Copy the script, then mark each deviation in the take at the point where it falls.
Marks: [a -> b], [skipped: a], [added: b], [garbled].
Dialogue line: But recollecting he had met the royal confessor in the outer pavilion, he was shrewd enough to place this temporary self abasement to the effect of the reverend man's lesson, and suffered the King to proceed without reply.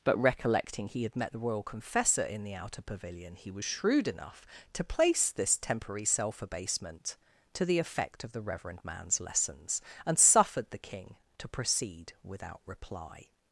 But recollecting he had met the royal confessor in the outer pavilion, he was shrewd enough to place this temporary self abasement to the effect of the reverend man's [lesson, -> lessons] and suffered the King to proceed without reply.